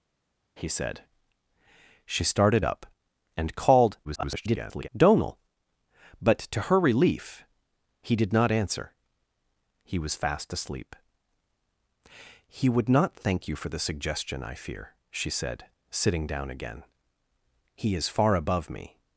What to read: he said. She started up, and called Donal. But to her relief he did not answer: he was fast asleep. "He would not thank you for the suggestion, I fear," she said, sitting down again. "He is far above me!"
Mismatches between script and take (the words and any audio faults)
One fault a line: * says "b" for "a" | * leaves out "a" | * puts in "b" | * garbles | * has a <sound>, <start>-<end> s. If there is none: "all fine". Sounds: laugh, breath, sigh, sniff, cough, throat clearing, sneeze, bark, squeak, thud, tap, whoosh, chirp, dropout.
* garbles